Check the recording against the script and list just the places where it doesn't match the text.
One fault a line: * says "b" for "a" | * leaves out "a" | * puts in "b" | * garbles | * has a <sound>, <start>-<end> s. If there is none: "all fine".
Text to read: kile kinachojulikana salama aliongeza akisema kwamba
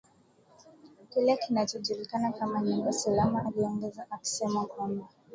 * puts in "kama nyumba"